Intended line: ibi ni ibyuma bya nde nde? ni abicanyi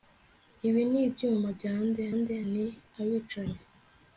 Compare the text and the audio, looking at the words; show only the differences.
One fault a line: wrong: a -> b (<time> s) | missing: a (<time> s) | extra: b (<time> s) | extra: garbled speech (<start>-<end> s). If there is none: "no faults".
no faults